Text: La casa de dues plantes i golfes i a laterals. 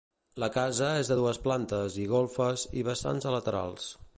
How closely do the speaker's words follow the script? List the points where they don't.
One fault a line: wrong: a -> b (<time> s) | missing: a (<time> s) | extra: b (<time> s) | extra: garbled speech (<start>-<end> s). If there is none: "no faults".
extra: és (1.0 s)
extra: vessants (2.9 s)